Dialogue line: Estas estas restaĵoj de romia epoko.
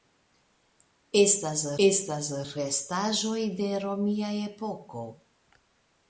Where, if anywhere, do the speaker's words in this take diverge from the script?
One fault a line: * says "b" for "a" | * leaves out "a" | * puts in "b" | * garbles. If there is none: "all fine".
all fine